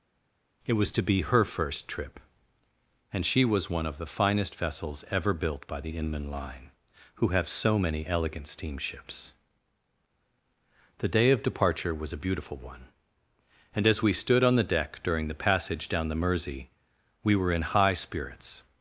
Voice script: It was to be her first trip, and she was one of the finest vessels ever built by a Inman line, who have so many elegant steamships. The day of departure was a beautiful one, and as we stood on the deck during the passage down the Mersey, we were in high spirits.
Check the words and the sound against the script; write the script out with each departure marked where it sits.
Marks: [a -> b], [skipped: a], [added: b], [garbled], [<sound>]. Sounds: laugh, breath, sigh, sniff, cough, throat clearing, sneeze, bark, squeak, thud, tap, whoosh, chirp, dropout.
It was to be her first trip, and she was one of the finest vessels ever built by [a -> the] Inman line, who have so many elegant steamships. The day of departure was a beautiful one, and as we stood on the deck during the passage down the Mersey, we were in high spirits.